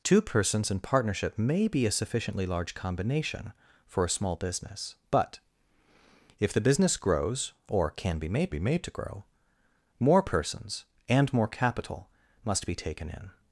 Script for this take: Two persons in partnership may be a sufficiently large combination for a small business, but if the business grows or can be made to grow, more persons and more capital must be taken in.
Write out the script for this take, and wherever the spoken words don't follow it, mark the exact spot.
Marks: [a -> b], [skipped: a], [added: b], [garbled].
Two persons in partnership may be a sufficiently large combination for a small business, but if the business grows or can be made [added: be made] to grow, more persons and more capital must be taken in.